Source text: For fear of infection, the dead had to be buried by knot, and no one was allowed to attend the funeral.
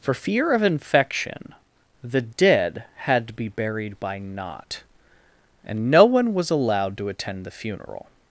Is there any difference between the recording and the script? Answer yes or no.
no